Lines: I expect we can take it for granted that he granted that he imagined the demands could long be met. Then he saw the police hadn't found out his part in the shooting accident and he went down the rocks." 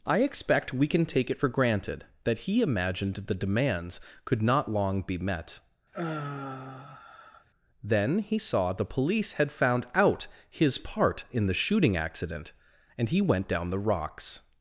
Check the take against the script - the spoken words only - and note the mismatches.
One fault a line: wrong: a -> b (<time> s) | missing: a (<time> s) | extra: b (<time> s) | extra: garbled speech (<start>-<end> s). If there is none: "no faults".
missing: granted that he (2.6 s)
extra: not (4.4 s)
wrong: hadn't -> had (9.3 s)